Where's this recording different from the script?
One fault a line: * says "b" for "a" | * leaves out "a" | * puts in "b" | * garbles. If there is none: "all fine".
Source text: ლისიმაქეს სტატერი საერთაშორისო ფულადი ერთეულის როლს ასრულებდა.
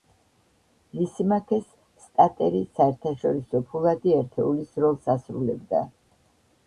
all fine